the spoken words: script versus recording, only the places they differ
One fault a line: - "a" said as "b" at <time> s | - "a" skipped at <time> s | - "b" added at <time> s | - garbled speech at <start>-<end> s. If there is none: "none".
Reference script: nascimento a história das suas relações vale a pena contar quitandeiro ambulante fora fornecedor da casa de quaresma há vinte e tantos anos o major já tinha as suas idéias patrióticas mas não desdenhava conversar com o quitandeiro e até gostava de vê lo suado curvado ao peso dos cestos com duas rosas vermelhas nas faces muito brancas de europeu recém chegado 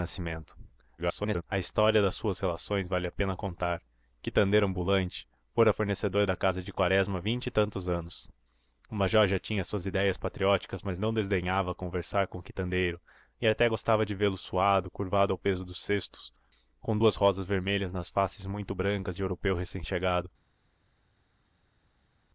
- garbled speech at 1.0-1.4 s